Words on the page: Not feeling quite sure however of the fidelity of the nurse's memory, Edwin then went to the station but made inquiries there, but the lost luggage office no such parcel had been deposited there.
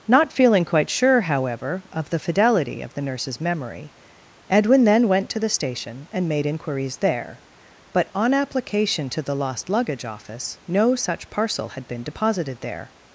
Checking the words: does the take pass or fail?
fail